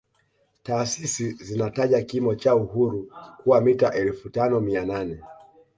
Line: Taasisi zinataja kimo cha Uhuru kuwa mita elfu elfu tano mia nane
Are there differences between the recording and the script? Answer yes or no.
yes